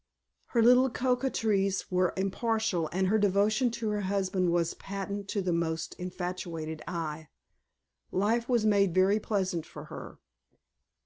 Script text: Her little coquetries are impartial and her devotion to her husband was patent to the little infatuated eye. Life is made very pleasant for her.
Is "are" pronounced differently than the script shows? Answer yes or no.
yes